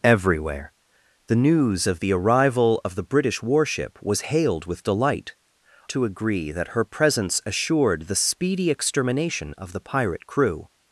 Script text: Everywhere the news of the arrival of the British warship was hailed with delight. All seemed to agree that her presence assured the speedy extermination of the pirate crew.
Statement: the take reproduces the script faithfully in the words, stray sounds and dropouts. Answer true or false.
false